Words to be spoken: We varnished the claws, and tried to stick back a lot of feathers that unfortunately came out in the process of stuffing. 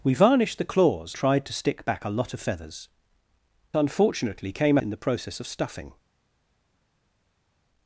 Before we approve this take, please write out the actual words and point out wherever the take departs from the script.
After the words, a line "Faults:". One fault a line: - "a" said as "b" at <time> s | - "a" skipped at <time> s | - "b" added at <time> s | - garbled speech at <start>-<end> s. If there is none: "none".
We varnished the claws, tried to stick back a lot of feathers unfortunately came in the process of stuffing.
Faults:
- "and" skipped at 1.1 s
- "that" skipped at 2.9 s
- "out" skipped at 4.8 s